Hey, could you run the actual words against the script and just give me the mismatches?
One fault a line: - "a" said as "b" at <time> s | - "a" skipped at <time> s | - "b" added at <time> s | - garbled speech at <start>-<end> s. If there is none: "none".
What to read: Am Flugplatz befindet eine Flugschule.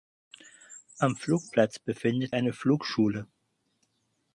none